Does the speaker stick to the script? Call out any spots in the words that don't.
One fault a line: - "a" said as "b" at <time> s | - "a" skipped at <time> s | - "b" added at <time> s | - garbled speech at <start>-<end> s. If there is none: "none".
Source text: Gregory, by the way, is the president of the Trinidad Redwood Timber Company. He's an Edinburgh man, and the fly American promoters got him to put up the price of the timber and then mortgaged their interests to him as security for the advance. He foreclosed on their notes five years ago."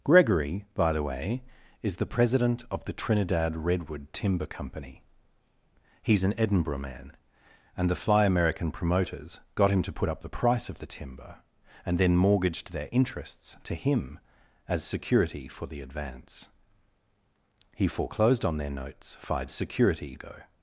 - "years" said as "security" at 19.5 s